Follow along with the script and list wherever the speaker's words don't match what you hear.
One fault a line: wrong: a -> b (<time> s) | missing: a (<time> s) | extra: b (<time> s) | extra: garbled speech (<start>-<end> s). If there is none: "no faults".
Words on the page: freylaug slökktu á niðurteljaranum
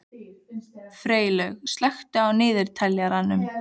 no faults